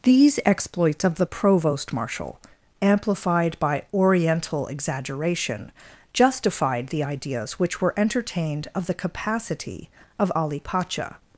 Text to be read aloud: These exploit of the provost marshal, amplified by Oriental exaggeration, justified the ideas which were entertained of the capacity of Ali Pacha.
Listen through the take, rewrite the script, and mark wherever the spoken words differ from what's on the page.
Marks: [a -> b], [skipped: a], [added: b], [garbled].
These [exploit -> exploits] of the provost marshal, amplified by Oriental exaggeration, justified the ideas which were entertained of the capacity of Ali Pacha.